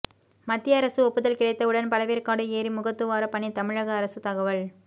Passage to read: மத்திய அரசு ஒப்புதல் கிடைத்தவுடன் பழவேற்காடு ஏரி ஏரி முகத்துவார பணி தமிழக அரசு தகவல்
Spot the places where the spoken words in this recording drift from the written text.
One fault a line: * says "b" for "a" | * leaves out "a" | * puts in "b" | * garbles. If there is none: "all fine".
* leaves out "ஏரி"